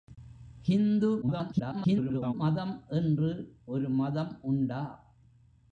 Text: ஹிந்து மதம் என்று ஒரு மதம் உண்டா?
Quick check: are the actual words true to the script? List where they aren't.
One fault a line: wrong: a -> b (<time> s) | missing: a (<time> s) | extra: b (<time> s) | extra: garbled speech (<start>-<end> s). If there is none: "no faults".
extra: garbled speech (1.2-2.3 s)